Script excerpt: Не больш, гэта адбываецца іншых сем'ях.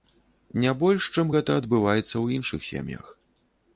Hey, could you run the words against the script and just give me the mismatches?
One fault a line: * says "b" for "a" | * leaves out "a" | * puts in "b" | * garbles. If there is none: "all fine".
* puts in "чым"
* puts in "ў"